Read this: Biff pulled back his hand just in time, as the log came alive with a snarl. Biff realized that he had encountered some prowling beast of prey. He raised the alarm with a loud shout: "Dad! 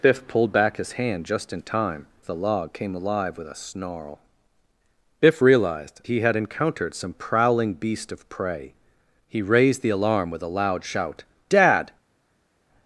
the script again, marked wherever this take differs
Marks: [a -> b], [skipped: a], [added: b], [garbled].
Biff pulled back his hand just in time, [skipped: as] the log came alive with a snarl. Biff realized [skipped: that] he had encountered some prowling beast of prey. He raised the alarm with a loud shout: "Dad!